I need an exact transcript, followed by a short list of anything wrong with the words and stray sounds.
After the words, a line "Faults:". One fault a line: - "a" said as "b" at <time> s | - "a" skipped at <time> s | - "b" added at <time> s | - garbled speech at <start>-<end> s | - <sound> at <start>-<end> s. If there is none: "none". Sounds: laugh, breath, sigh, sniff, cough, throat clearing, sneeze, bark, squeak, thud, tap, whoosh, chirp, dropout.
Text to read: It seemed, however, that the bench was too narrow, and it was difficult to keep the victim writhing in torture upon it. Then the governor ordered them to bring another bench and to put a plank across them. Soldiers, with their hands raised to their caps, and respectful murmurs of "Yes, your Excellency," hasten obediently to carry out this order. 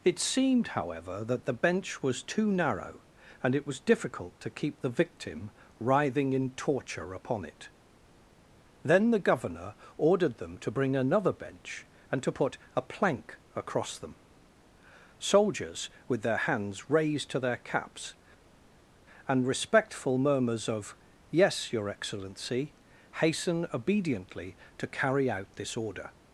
It seemed, however, that the bench was too narrow, and it was difficult to keep the victim writhing in torture upon it. Then the governor ordered them to bring another bench and to put a plank across them. Soldiers, with their hands raised to their caps, and respectful murmurs of "Yes, your Excellency," hasten obediently to carry out this order.
Faults:
none